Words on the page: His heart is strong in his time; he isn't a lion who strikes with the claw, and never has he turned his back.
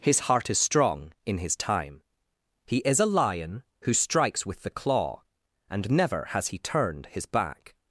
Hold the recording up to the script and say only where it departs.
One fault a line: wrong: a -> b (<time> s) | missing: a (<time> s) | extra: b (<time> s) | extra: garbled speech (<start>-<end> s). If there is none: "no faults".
wrong: isn't -> is (2.8 s)